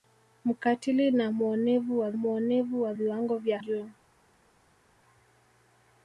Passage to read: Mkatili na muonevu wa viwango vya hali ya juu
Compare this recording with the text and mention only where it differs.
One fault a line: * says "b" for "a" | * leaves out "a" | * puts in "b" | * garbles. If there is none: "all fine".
* puts in "muonevu wa"
* leaves out "hali ya"